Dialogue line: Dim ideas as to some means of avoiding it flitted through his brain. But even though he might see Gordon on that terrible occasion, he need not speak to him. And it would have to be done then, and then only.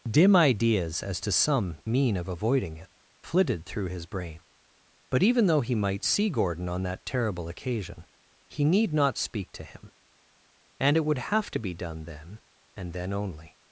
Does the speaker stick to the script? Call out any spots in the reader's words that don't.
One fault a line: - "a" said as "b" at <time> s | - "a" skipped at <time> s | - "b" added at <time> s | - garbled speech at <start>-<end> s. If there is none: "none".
- "means" said as "mean" at 1.9 s